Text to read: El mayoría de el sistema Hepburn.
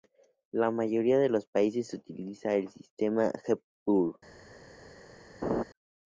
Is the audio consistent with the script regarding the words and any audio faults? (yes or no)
no